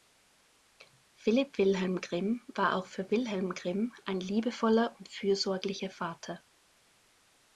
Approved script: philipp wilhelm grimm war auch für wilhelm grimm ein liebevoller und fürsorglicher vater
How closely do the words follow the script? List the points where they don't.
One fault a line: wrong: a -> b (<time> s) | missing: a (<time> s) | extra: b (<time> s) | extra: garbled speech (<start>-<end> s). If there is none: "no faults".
no faults